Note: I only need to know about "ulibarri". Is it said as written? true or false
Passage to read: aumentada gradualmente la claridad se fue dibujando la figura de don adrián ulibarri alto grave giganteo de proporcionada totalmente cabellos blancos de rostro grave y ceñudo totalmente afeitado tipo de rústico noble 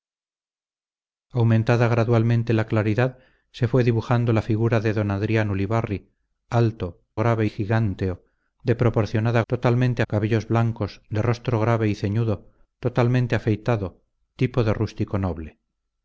true